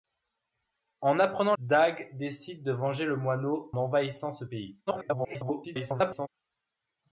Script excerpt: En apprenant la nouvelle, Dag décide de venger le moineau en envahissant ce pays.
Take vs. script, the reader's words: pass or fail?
fail